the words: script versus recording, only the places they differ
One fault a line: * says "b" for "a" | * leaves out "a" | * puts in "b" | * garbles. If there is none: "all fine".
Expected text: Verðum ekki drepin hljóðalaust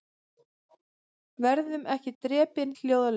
all fine